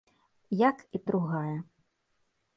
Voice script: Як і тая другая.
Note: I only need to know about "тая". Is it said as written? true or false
false